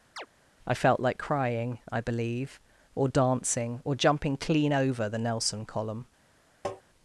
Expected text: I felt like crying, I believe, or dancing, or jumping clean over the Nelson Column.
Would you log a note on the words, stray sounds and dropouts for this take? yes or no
yes